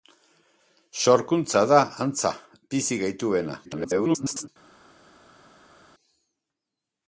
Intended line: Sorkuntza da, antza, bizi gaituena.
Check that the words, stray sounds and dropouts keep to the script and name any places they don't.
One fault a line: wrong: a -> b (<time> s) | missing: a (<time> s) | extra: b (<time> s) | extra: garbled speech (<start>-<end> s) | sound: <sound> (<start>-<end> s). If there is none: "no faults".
extra: garbled speech (3.6-4.5 s)